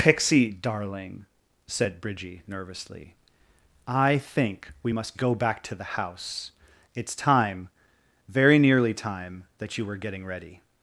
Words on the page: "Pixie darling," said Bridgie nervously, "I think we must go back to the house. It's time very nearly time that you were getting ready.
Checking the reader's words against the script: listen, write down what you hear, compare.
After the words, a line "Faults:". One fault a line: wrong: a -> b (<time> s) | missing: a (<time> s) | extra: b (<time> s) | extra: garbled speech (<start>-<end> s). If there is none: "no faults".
"Pixie darling," said Bridgie nervously, "I think we must go back to the house. It's time very nearly time that you were getting ready.
Faults:
no faults